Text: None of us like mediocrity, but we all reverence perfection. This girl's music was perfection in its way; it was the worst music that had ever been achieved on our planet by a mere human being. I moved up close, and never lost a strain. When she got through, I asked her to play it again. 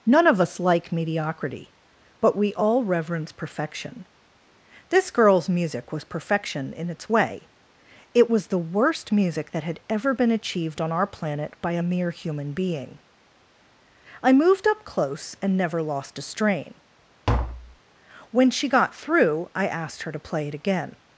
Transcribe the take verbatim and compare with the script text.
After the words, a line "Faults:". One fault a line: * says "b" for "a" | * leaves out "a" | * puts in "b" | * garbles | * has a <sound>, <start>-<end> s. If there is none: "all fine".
None of us like mediocrity, but we all reverence perfection. This girl's music was perfection in its way; it was the worst music that had ever been achieved on our planet by a mere human being. I moved up close, and never lost a strain. When she got through, I asked her to play it again.
Faults:
* has a tap, 17.3-17.8 s